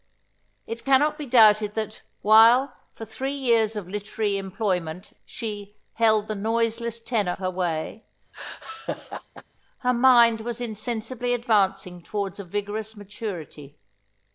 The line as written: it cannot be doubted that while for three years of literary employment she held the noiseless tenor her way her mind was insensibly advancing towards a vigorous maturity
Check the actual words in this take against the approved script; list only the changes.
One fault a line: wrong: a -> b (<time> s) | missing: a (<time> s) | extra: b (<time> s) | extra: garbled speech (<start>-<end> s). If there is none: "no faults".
no faults